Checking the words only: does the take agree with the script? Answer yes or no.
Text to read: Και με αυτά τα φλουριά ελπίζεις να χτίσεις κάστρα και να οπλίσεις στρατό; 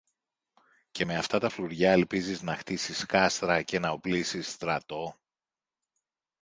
yes